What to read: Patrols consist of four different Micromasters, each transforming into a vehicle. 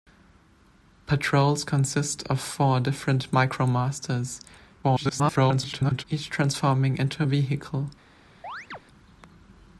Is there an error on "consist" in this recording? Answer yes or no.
no